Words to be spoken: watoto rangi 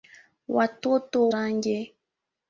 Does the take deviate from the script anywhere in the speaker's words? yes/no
no